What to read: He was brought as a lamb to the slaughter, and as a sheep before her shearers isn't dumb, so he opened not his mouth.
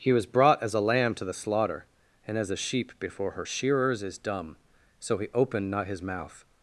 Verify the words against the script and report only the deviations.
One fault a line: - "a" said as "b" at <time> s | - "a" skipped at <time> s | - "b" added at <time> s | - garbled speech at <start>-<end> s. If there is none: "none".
- "isn't" said as "is" at 4.0 s